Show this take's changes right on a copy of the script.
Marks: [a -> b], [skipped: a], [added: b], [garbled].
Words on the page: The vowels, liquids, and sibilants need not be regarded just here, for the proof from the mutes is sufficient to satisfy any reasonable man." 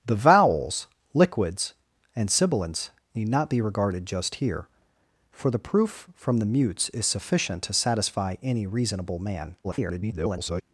The vowels, liquids, and sibilants need not be regarded just here, for the proof from the mutes is sufficient to satisfy any reasonable man." [garbled]